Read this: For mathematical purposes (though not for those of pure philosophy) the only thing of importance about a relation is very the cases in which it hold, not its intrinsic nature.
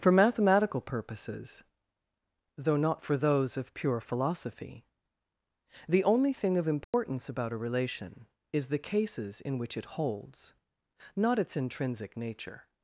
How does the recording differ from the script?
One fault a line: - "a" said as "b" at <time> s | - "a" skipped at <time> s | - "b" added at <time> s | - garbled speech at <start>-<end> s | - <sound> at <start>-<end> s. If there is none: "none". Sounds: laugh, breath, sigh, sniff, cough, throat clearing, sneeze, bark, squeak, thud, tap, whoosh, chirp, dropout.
- dropout at 6.8-6.9 s
- "very" skipped at 8.7 s
- "hold" said as "holds" at 10.0 s